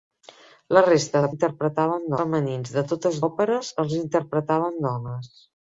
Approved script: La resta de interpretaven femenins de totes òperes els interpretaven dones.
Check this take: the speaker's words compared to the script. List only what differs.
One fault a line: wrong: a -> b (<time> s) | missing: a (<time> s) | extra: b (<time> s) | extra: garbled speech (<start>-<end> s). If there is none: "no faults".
no faults